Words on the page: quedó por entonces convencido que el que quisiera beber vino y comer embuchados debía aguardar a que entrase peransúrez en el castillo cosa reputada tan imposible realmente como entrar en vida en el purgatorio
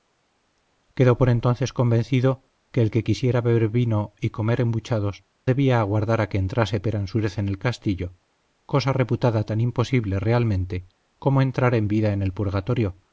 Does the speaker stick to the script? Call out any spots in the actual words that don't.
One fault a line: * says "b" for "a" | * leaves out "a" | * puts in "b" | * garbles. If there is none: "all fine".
all fine